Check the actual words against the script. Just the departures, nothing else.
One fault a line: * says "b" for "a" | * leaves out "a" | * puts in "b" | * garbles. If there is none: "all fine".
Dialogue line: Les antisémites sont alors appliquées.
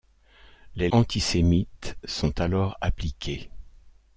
all fine